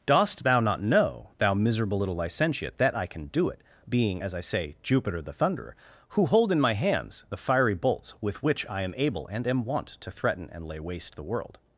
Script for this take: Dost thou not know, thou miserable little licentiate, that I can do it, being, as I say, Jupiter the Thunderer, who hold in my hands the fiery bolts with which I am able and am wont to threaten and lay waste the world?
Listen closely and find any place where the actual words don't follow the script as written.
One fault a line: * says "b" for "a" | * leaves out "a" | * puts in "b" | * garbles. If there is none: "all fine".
all fine